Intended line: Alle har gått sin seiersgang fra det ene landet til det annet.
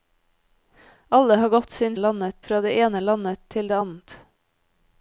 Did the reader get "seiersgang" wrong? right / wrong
wrong